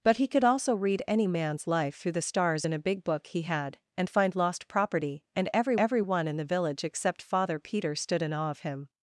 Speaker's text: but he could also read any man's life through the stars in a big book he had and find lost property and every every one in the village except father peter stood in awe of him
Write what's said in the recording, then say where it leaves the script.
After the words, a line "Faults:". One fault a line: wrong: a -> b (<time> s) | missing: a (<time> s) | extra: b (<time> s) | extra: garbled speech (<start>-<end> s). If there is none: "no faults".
but he could also read any man's life through the stars in a big book he had and find lost property and every every one in the village except father peter stood in awe of him
Faults:
no faults